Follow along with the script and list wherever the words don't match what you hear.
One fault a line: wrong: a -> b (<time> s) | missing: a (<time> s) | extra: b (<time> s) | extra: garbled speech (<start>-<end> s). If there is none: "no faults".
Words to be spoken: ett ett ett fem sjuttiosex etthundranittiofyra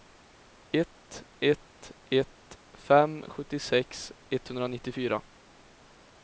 no faults